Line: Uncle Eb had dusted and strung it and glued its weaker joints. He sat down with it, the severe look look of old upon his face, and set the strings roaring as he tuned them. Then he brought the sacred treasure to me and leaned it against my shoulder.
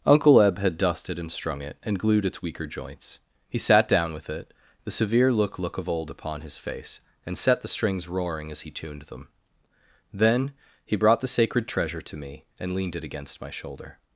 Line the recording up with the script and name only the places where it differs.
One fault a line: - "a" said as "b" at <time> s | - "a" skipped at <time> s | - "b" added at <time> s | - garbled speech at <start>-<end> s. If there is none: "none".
none